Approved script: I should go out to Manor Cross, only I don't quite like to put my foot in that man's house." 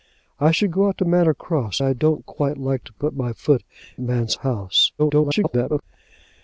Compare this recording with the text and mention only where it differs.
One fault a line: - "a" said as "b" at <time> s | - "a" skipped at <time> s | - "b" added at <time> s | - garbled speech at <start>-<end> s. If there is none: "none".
- "only" skipped at 1.8 s
- "in that" skipped at 3.6 s
- garbled speech at 5.0-5.8 s